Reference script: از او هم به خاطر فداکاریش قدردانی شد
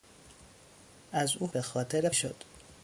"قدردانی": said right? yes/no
no